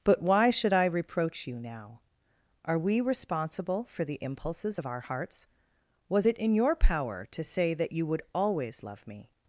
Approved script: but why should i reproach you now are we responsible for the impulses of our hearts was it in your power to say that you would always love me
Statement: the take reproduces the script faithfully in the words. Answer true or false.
true